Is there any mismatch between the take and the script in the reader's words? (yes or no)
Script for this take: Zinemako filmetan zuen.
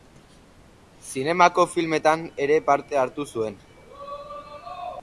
yes